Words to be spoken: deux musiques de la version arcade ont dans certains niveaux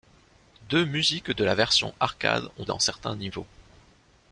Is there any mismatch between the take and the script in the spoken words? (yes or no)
no